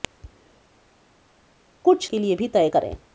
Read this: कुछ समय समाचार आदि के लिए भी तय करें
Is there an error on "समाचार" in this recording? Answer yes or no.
yes